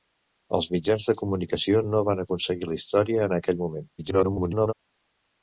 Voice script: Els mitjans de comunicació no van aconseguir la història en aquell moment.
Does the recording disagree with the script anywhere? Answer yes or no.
yes